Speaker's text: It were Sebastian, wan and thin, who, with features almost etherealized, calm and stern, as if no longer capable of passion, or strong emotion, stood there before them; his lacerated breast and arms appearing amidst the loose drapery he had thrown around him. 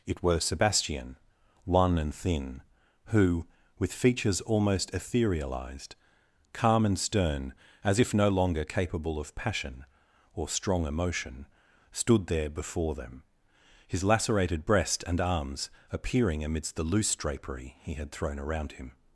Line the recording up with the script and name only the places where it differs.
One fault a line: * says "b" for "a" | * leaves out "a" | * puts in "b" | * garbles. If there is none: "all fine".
all fine